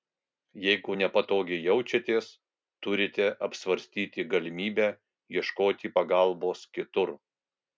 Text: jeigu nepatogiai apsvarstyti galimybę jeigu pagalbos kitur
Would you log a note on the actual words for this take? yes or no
yes